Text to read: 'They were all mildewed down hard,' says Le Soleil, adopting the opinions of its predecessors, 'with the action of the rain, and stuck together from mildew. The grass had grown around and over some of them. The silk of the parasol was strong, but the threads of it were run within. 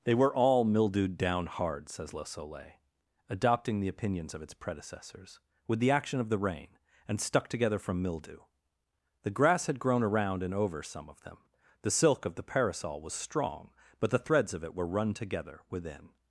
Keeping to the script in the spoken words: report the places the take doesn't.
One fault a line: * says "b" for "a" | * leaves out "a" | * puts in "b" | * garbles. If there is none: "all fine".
* puts in "together"